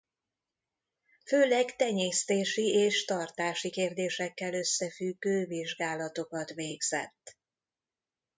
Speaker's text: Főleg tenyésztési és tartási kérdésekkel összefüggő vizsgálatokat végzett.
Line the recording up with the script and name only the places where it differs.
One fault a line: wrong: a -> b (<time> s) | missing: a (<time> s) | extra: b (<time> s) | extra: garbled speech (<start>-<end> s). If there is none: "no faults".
no faults